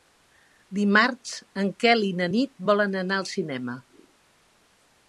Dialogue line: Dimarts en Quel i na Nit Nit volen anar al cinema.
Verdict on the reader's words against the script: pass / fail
fail